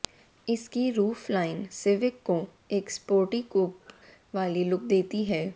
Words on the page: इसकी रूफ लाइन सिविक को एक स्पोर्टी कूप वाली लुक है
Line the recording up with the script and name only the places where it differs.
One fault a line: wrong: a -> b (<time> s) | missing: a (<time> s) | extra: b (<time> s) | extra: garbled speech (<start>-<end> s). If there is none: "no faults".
extra: देती (4.9 s)